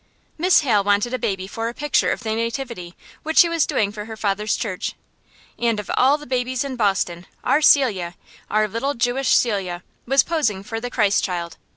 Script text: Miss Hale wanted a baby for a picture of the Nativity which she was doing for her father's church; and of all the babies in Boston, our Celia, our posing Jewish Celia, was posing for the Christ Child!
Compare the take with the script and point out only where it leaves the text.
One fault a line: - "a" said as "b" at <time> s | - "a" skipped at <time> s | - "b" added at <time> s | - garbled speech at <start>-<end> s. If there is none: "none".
- "posing" said as "little" at 8.7 s